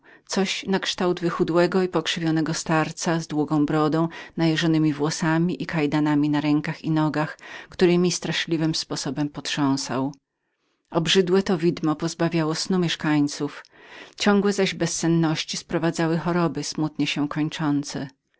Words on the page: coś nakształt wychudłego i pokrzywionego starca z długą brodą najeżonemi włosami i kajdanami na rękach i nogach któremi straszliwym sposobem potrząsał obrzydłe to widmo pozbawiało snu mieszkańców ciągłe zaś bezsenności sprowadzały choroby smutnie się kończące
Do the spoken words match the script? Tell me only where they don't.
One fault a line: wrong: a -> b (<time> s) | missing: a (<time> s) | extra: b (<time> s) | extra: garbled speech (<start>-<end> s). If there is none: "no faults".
no faults